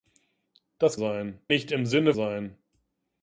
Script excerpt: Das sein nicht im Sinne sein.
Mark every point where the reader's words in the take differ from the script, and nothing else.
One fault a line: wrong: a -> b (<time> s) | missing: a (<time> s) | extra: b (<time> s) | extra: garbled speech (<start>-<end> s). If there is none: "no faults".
no faults